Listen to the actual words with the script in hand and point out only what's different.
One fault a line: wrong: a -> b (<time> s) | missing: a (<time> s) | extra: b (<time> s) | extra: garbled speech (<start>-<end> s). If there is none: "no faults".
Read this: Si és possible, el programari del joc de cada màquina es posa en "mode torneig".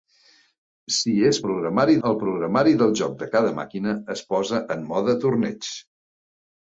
wrong: possible -> programari (1.5 s)